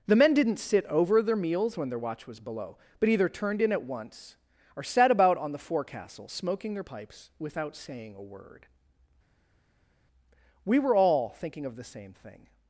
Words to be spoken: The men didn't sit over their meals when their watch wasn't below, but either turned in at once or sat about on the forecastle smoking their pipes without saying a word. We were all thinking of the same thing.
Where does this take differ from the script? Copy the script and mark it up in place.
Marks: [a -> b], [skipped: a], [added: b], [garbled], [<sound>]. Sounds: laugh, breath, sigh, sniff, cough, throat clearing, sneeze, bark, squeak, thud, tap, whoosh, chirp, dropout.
The men didn't sit over their meals when their watch [wasn't -> was] below, but either turned in at once or sat about on the forecastle smoking their pipes without saying a word. We were all thinking of the same thing.